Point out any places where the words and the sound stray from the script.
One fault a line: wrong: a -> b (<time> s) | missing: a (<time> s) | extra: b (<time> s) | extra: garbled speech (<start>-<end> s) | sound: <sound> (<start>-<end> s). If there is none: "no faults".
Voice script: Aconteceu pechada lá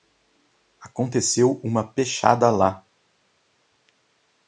extra: uma (1.6 s)